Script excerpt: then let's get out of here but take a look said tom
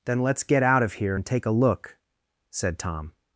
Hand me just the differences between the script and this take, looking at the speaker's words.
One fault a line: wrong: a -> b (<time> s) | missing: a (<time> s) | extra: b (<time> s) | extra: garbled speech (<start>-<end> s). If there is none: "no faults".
wrong: but -> and (1.1 s)